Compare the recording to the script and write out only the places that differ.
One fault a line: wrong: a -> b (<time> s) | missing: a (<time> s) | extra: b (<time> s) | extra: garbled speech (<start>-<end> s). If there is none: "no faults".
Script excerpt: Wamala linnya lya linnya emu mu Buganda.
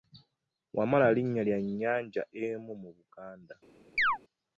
wrong: linnya -> nnyanja (1.6 s)